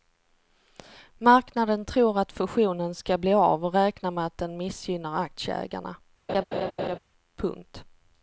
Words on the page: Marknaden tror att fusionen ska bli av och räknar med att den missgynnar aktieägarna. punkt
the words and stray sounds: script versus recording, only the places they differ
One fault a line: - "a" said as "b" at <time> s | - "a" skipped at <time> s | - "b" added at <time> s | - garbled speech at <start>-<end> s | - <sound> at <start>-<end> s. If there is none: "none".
- laugh at 6.3-7.0 s